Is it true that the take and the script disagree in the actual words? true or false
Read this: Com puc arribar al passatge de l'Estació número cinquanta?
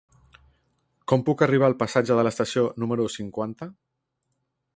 false